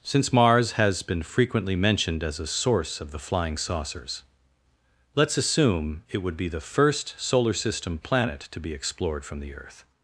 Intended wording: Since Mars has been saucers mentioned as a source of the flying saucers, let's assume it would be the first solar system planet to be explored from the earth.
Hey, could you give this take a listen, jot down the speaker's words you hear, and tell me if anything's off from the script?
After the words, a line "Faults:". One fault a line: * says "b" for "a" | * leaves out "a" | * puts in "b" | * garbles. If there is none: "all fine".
Since Mars has been frequently mentioned as a source of the flying saucers, let's assume it would be the first solar system planet to be explored from the earth.
Faults:
* says "frequently" for "saucers"